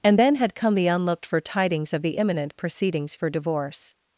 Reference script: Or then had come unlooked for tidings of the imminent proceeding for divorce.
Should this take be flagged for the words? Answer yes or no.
yes